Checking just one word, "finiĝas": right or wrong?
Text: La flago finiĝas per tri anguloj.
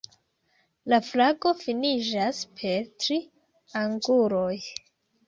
right